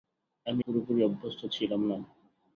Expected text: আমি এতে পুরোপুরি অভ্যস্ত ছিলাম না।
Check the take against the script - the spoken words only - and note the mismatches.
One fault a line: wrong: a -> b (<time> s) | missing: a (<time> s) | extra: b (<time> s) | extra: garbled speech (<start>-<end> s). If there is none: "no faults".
missing: এতে (0.6 s)